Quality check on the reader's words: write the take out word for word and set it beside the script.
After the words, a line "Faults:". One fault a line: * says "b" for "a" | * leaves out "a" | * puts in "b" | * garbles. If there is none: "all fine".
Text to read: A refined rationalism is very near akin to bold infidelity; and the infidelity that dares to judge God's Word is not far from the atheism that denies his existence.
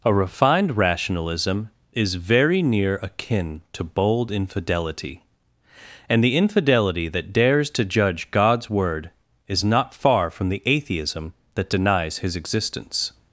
A refined rationalism is very near akin to bold infidelity; and the infidelity that dares to judge God's Word is not far from the atheism that denies his existence.
Faults:
all fine